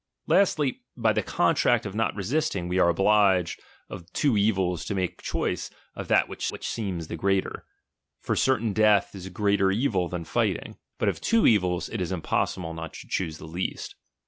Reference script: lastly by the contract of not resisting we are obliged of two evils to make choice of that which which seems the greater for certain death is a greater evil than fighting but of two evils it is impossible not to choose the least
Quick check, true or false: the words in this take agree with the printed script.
true